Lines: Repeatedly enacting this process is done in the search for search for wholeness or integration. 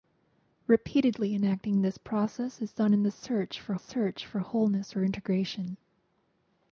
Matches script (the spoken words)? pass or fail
pass